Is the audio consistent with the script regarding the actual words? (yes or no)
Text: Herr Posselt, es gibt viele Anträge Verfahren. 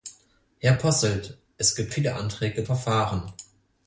yes